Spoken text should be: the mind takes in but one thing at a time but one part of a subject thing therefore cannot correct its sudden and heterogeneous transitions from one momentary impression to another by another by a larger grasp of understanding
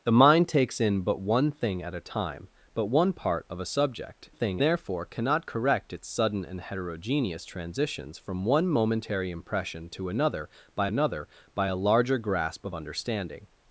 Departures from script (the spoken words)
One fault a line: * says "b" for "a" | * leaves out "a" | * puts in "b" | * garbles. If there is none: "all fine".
all fine